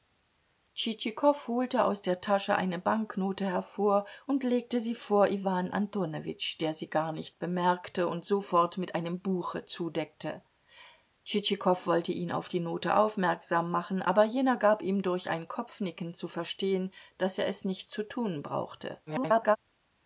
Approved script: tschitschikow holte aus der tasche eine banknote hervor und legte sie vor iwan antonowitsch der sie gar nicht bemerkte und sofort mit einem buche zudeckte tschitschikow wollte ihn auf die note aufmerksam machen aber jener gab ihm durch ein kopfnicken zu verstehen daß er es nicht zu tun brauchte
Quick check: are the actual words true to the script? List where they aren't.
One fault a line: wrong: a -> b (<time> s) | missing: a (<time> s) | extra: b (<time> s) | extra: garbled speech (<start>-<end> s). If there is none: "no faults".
extra: garbled speech (19.1-19.6 s)